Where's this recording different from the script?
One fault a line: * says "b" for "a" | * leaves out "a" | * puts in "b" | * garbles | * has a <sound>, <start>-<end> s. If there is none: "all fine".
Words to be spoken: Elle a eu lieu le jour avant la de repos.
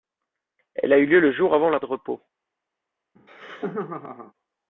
* has a laugh, 3.2-4.3 s